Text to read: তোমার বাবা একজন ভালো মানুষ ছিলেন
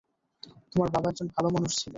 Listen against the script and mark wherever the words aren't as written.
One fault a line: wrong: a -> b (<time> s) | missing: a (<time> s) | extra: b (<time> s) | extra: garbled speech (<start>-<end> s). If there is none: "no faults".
no faults